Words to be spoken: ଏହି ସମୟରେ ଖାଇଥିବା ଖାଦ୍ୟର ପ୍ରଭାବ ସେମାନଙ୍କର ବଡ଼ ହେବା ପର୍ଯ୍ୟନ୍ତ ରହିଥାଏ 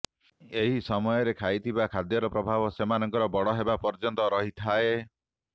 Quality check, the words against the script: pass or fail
pass